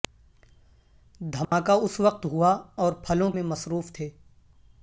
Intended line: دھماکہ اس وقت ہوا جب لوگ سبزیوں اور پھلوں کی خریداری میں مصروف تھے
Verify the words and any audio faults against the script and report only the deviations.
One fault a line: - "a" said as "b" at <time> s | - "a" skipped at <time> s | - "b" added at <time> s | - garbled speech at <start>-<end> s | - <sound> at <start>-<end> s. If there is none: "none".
- dropout at 1.4-1.5 s
- "جب لوگ سبزیوں" skipped at 2.5 s
- "کی خریداری" skipped at 3.3 s